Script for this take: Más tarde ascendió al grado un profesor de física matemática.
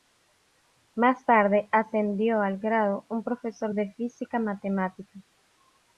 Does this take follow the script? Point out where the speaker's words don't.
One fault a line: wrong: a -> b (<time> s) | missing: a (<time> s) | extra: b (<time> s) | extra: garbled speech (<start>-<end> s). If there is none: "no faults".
no faults